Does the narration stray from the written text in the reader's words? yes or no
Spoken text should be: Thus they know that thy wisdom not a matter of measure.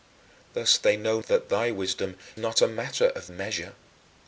no